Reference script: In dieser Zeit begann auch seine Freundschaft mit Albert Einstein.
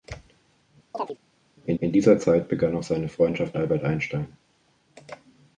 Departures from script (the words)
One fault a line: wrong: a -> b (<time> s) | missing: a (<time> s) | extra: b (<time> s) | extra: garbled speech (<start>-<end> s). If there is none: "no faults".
extra: in (1.8 s)
missing: mit (3.6 s)